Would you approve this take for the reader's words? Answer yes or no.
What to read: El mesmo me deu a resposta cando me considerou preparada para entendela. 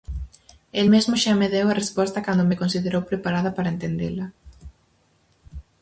no